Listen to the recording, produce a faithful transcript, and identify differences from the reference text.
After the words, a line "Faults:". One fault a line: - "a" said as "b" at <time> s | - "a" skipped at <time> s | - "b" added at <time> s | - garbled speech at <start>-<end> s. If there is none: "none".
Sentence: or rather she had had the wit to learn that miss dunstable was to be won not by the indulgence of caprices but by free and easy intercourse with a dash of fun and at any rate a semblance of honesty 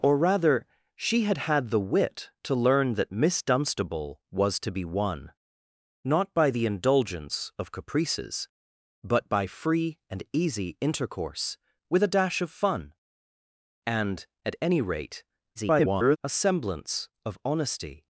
or rather she had had the wit to learn that miss dunstable was to be won not by the indulgence of caprices but by free and easy intercourse with a dash of fun and at any rate [garbled] a semblance of honesty
Faults:
- garbled speech at 15.6-16.2 s